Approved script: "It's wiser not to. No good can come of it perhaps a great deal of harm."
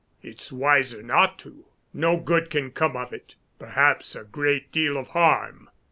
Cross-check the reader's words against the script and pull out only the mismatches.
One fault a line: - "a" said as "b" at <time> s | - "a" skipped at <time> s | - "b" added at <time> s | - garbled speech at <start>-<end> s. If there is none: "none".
none